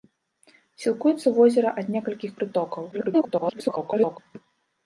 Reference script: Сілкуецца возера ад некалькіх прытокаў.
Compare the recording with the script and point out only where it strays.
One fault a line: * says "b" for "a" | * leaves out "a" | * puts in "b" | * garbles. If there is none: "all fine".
* garbles